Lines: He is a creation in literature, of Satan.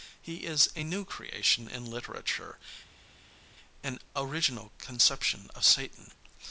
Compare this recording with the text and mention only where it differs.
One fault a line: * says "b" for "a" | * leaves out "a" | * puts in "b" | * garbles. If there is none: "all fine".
* puts in "new"
* puts in "an original conception"